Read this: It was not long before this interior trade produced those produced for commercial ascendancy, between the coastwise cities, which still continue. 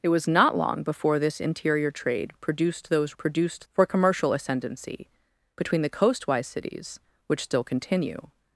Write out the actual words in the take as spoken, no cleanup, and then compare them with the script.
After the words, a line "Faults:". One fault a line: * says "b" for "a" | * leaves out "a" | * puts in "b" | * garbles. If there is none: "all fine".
It was not long before this interior trade produced those produced for commercial ascendancy, between the coastwise cities, which still continue.
Faults:
all fine